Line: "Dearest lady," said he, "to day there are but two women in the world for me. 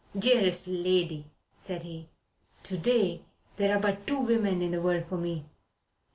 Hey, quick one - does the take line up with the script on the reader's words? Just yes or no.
yes